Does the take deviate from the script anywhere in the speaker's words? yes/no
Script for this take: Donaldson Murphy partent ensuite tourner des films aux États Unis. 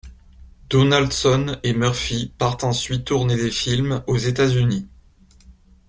yes